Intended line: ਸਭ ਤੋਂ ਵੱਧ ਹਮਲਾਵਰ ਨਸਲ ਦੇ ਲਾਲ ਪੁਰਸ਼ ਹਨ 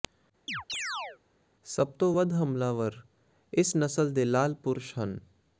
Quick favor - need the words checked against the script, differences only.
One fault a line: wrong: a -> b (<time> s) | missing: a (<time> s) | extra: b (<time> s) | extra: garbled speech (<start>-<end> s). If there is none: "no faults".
extra: ਇਸ (3.5 s)